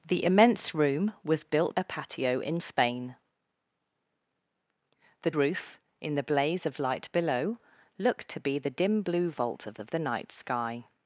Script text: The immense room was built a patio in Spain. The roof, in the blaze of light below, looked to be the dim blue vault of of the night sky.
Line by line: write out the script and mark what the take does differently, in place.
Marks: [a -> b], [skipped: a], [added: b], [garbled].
The immense room was built a patio in Spain. The roof, in the blaze of light below, looked to be the dim blue vault of of the night sky.